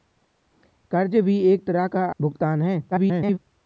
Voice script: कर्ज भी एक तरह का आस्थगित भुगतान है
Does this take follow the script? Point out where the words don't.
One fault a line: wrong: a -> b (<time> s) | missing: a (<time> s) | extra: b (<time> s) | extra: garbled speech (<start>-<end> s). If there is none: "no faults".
missing: आस्थगित (2.0 s)
extra: garbled speech (2.9-3.4 s)